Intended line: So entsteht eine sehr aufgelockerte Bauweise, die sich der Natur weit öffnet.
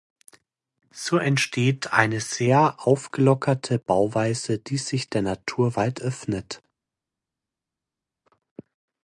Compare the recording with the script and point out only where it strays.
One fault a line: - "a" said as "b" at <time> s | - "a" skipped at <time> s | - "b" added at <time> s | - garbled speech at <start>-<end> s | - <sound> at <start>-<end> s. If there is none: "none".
none